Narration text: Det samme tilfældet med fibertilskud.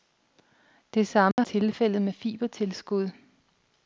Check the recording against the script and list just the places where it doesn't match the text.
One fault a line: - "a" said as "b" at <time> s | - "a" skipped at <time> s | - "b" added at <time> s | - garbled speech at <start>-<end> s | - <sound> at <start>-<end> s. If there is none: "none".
- dropout at 1.3-1.4 s